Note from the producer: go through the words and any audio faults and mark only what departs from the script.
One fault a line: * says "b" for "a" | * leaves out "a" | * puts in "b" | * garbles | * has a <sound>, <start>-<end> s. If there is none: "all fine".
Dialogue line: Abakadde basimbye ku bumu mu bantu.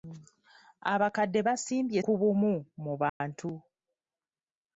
* has a dropout, 3.1-3.2 s